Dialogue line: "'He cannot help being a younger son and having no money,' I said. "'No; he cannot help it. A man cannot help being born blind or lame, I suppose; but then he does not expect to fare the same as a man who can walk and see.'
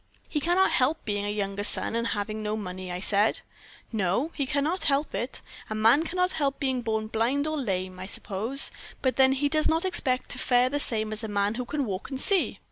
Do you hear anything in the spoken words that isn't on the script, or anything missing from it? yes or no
no